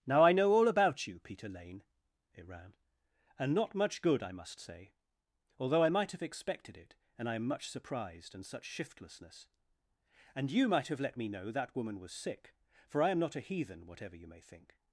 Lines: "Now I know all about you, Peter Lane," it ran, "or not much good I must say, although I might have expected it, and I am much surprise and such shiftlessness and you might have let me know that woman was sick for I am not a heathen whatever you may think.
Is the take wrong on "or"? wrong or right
wrong